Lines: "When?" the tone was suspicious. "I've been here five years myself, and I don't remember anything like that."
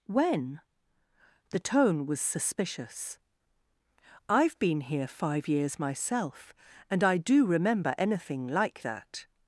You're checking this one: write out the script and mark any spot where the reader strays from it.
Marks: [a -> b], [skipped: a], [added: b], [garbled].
"When?" the tone was suspicious. "I've been here five years myself, and I [don't -> do] remember anything like that."